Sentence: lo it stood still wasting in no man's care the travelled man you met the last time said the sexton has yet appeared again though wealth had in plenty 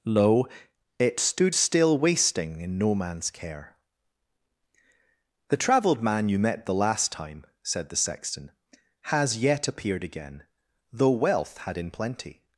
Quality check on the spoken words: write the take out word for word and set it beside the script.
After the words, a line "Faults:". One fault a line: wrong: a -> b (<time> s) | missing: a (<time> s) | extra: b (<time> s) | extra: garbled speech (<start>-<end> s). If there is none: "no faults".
lo it stood still wasting in no man's care the travelled man you met the last time said the sexton has yet appeared again though wealth had in plenty
Faults:
no faults